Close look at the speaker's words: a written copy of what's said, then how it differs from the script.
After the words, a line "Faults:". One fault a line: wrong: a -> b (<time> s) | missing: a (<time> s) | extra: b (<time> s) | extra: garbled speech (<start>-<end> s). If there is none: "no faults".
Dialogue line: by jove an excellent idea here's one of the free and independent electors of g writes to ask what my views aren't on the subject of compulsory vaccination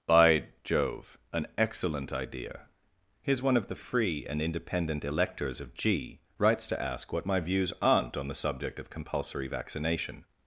by jove an excellent idea here's one of the free and independent electors of g writes to ask what my views aren't on the subject of compulsory vaccination
Faults:
no faults